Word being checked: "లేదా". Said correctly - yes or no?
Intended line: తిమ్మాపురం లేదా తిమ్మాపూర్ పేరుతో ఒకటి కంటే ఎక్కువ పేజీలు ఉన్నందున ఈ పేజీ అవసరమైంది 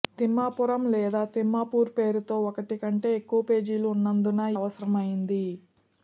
yes